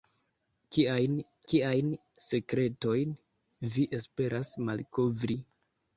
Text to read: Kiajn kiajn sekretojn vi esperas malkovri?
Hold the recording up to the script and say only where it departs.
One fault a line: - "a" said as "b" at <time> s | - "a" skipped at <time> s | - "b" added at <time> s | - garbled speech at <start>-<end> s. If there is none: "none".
none